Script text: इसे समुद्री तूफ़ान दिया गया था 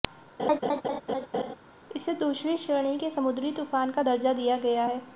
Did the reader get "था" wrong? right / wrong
wrong